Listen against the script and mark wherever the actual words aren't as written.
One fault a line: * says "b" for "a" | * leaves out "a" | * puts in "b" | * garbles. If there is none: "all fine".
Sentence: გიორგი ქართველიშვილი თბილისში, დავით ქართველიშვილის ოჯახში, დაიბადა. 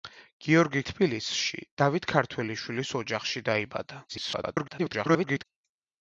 * leaves out "ქართველიშვილი"
* garbles